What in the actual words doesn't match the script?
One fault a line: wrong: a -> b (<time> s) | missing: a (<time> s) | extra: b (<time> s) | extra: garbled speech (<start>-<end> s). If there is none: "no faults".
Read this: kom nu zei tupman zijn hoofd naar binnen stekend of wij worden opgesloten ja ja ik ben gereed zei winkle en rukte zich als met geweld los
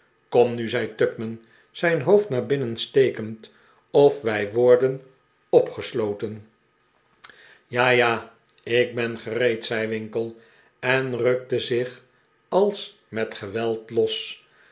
no faults